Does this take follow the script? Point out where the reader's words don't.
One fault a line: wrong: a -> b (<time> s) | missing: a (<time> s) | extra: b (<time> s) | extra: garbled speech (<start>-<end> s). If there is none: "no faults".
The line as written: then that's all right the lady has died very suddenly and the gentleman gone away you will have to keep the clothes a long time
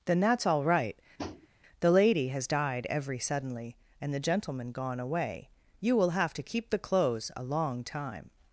wrong: very -> every (2.9 s)